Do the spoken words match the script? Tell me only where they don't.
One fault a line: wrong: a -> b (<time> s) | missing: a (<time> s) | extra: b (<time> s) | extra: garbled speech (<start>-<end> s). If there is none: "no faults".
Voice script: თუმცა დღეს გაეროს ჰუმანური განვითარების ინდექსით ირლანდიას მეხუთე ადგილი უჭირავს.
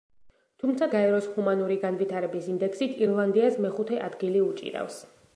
missing: დღეს (0.8 s)